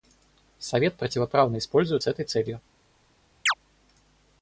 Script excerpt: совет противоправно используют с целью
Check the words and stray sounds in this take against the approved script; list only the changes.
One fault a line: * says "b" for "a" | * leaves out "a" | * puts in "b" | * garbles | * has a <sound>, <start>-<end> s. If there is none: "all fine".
* puts in "этой"
* has a chirp, 3.5-3.5 s